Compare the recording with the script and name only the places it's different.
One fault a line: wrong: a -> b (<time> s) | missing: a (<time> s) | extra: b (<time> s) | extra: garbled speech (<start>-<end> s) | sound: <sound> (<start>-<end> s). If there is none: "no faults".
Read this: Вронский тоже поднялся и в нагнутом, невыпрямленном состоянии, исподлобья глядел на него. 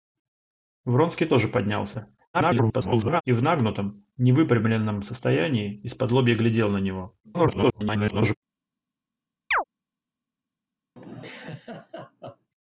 extra: garbled speech (2.3-3.2 s)
extra: garbled speech (7.2-8.4 s)
sound: chirp (9.5-9.6 s)
sound: laugh (11.0-12.5 s)